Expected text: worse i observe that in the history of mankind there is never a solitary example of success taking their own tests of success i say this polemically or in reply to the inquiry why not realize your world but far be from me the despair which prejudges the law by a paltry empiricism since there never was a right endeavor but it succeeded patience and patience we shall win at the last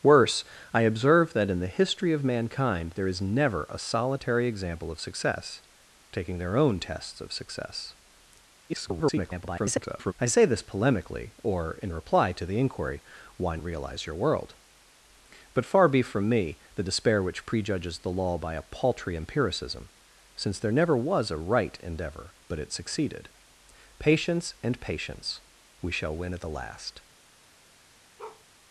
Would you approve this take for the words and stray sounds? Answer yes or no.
no